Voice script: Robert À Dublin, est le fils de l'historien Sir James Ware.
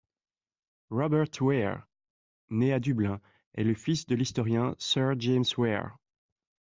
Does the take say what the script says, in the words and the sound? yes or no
no